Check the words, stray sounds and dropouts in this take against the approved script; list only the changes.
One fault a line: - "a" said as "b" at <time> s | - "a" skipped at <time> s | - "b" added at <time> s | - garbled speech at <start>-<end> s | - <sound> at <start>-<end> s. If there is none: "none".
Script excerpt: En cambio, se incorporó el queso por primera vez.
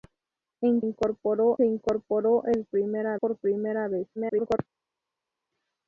- "cambio" said as "incorporó" at 0.8 s
- "queso" said as "primera" at 2.7 s
- garbled speech at 4.2-4.6 s